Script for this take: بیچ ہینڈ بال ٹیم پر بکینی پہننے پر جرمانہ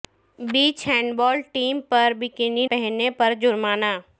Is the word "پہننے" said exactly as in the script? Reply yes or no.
yes